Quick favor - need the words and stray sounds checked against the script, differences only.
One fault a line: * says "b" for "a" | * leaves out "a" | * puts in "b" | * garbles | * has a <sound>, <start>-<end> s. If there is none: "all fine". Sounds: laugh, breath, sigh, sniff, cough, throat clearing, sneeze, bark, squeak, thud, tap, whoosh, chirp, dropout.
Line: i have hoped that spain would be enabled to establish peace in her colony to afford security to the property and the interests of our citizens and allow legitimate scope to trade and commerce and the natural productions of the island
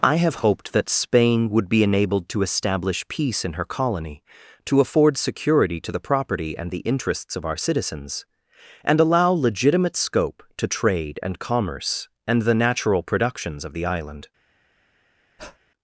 * has a breath, 15.4-15.6 s